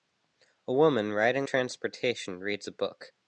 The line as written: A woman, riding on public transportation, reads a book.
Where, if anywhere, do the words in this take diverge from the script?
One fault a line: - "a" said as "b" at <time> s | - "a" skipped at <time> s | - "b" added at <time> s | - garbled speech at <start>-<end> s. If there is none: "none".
- "on public" skipped at 1.5 s